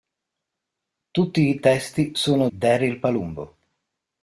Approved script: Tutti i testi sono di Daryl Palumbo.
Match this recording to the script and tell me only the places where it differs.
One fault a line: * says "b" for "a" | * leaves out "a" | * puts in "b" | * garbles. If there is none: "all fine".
* leaves out "di"